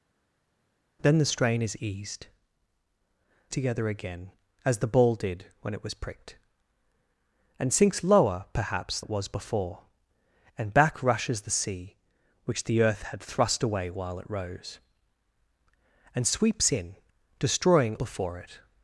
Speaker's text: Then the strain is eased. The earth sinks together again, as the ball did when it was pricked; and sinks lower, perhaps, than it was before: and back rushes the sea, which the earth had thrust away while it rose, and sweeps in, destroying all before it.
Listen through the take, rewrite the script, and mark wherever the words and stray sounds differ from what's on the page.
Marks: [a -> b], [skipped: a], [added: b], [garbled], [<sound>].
Then the strain is eased. [skipped: The earth sinks] together again, as the ball did when it was pricked; and sinks lower, perhaps, [skipped: than] it was before: and back rushes the sea, which the earth had thrust away while it rose, and sweeps in, destroying [skipped: all] before it.